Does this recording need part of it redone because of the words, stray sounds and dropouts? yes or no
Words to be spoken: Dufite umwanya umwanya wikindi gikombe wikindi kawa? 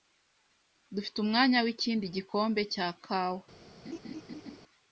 yes